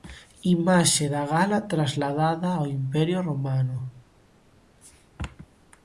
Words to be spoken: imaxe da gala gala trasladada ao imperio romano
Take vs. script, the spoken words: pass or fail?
fail